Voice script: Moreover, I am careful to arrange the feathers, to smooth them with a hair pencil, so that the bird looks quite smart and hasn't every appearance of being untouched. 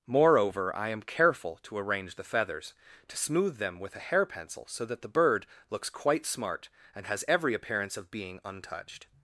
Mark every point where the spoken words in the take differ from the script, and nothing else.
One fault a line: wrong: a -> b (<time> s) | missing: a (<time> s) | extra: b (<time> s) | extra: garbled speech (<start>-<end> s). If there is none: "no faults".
wrong: hasn't -> has (7.0 s)